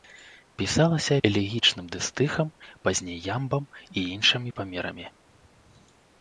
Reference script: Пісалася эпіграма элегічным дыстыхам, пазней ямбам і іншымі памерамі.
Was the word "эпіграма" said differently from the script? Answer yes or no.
yes